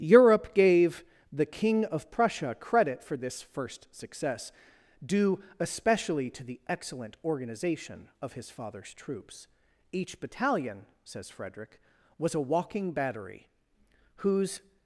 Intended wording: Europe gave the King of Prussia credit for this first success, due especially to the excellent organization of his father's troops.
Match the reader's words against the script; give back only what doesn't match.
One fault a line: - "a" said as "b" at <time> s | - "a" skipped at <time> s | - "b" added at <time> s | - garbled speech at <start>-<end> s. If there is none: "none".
- "Each battalion says Frederick was a walking battery whose" added at 9.9 s